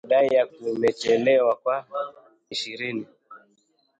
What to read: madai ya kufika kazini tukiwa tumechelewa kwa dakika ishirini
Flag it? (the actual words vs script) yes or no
yes